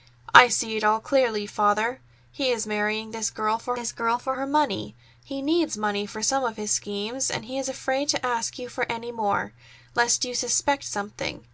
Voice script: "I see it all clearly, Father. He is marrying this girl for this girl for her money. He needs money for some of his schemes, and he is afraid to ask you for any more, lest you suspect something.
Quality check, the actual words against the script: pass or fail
pass